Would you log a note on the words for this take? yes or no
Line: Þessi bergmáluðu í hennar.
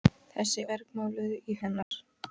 no